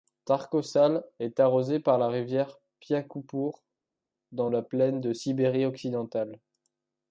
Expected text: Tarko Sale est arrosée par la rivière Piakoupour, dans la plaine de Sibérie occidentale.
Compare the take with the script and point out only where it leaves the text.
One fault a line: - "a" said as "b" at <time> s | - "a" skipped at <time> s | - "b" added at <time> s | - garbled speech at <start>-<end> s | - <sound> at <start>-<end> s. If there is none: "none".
none